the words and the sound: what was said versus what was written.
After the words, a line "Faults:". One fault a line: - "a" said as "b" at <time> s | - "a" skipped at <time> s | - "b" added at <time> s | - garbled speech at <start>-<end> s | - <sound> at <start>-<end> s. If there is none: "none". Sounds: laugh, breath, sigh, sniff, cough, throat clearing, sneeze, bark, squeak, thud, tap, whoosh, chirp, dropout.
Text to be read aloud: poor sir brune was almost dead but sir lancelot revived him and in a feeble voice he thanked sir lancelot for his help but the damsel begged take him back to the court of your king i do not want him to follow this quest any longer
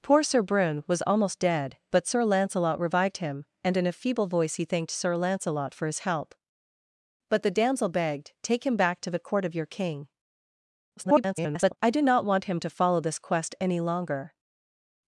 poor sir brune was almost dead but sir lancelot revived him and in a feeble voice he thanked sir lancelot for his help but the damsel begged take him back to the court of your king [garbled] i do not want him to follow this quest any longer
Faults:
- garbled speech at 11.0-11.8 s